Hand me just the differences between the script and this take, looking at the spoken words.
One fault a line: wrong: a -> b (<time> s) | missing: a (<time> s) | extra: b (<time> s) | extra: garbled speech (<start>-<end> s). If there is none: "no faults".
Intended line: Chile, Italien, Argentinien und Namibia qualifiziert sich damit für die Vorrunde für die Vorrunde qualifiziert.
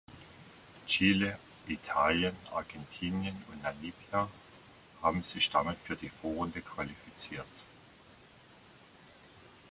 wrong: qualifiziert -> haben (5.0 s)
missing: für die Vorrunde (6.6 s)